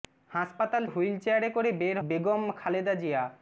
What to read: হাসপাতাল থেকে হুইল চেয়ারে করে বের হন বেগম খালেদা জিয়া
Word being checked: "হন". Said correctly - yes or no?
no